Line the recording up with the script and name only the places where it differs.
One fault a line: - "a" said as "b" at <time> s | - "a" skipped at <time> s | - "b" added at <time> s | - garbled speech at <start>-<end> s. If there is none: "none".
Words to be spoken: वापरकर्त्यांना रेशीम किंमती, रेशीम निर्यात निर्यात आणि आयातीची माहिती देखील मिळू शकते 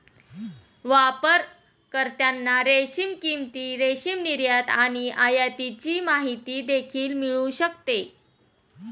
- "निर्यात" skipped at 4.7 s